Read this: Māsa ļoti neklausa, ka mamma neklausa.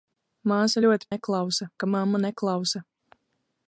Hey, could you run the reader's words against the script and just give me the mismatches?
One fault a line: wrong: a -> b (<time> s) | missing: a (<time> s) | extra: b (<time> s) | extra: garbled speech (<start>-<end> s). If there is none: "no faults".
no faults